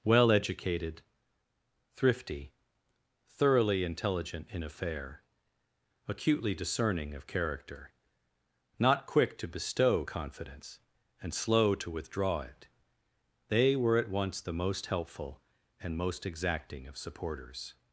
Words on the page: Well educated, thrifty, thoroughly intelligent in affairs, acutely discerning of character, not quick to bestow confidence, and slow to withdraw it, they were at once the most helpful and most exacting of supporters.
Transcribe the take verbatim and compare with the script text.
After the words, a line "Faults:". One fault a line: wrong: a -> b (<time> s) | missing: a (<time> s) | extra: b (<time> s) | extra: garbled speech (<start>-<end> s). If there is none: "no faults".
Well educated, thrifty, thoroughly intelligent in affair, acutely discerning of character, not quick to bestow confidence, and slow to withdraw it, they were at once the most helpful and most exacting of supporters.
Faults:
wrong: affairs -> affair (4.6 s)